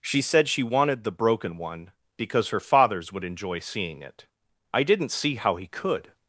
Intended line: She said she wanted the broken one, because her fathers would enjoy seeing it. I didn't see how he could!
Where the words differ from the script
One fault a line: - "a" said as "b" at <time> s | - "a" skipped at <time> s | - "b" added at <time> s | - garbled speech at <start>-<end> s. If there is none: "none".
none